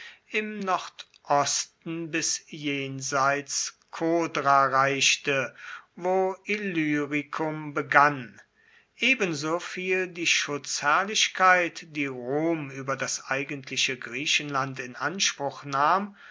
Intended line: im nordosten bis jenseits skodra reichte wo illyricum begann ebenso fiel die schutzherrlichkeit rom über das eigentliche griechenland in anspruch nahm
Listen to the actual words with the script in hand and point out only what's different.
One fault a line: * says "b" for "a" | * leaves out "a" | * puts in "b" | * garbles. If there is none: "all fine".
* puts in "die"